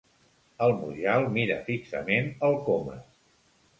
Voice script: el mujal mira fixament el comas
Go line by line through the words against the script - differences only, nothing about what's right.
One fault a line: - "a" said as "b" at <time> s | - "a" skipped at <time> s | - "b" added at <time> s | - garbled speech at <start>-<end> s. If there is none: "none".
none